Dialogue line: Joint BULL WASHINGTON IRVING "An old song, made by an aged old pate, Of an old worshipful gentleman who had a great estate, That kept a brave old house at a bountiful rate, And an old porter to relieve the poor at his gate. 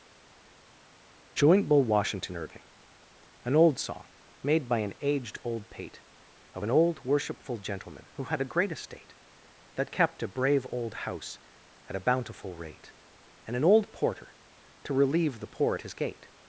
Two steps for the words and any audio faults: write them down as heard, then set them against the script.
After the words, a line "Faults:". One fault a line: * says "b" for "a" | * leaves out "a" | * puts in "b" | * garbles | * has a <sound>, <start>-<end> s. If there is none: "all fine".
Joint BULL WASHINGTON IRVING "An old song, made by an aged old pate, Of an old worshipful gentleman who had a great estate, That kept a brave old house at a bountiful rate, And an old porter to relieve the poor at his gate.
Faults:
all fine